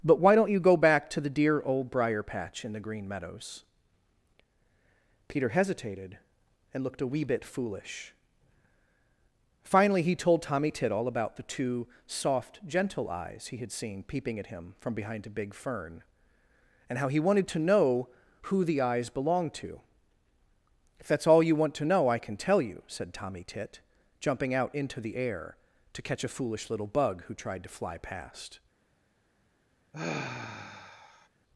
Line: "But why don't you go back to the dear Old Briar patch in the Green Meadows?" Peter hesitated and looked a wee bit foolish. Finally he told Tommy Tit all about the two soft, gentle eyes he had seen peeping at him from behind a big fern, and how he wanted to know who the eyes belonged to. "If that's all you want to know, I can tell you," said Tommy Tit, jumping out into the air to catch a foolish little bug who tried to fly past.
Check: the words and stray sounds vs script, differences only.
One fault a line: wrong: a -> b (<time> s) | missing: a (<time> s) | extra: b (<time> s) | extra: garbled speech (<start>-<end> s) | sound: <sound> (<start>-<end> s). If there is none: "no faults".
sound: sigh (29.9-31.3 s)